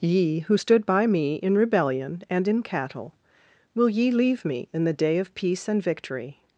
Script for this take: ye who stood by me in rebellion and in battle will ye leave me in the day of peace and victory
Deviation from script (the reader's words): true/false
true